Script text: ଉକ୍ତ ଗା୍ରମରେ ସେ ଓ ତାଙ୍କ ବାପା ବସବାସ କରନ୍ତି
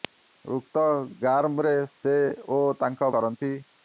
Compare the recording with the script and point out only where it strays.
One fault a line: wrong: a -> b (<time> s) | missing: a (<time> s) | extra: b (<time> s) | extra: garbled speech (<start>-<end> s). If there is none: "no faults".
missing: ବାପା ବସବାସ (3.1 s)